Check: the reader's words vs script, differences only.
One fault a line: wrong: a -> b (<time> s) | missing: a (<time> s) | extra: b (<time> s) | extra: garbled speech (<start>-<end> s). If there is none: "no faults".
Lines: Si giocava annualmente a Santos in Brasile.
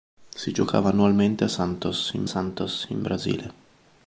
extra: Santos in (2.2 s)